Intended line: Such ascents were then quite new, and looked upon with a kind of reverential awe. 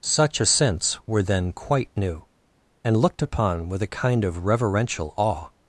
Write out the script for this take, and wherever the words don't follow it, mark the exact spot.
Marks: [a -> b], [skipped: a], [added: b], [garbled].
Such ascents were then quite new, and looked upon with a kind of reverential awe.